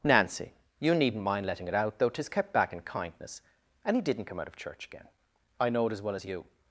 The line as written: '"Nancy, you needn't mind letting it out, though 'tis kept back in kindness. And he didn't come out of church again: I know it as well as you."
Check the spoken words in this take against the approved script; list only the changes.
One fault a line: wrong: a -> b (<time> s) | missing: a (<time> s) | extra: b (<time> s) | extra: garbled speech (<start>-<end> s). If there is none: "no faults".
no faults